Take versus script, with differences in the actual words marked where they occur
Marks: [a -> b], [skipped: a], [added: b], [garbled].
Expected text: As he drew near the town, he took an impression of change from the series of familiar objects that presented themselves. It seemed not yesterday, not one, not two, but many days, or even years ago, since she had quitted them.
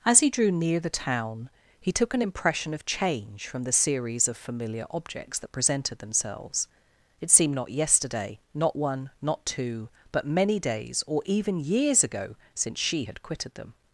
As he drew near the town, he took an impression of change from the series of familiar objects that presented themselves. It seemed not yesterday, not one, not two, but many days, or even years ago, since she had quitted them.